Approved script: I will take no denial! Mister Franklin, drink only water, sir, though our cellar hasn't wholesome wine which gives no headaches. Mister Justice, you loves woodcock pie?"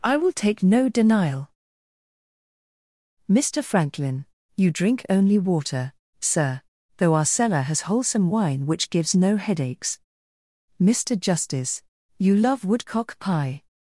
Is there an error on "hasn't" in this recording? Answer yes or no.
yes